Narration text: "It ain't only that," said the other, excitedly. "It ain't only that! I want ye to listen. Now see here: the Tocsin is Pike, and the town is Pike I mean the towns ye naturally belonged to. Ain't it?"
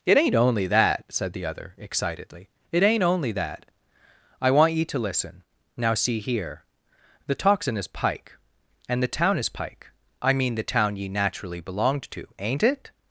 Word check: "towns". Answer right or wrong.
wrong